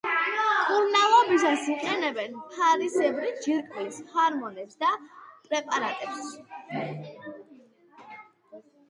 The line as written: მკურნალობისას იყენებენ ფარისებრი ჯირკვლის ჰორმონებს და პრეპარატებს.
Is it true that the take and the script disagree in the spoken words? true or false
false